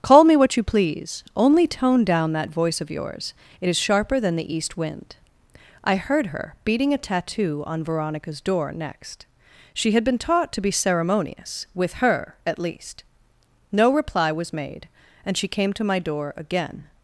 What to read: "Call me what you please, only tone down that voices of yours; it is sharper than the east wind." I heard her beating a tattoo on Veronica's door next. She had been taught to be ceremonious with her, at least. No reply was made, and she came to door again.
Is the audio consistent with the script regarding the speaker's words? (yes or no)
no